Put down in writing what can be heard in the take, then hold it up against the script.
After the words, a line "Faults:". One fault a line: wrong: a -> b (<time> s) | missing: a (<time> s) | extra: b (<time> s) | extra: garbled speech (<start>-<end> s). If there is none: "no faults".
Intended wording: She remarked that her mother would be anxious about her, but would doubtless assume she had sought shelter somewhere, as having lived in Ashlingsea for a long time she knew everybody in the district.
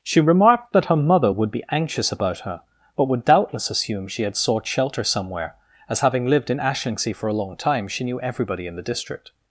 She remarked that her mother would be anxious about her, but would doubtless assume she had sought shelter somewhere, as having lived in Ashlingsea for a long time she knew everybody in the district.
Faults:
no faults